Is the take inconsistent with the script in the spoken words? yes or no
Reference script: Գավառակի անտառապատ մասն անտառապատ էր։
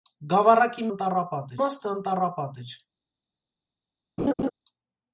no